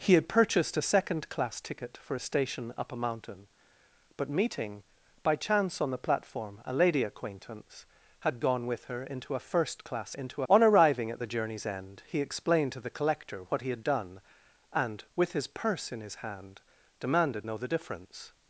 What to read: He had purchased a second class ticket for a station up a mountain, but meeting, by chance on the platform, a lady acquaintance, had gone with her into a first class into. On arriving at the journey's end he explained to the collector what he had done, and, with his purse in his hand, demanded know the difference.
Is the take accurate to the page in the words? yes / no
yes